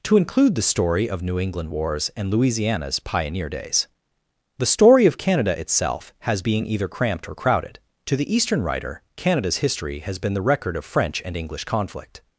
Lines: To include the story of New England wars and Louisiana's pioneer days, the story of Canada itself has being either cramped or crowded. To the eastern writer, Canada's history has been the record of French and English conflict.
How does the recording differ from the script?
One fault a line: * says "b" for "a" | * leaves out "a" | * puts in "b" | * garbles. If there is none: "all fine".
all fine